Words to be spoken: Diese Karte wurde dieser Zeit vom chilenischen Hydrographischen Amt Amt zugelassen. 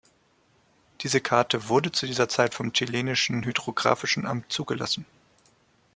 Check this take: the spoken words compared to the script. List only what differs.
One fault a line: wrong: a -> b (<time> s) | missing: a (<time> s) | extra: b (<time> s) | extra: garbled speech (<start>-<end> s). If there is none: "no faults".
extra: zu (1.9 s)
missing: Amt (4.4 s)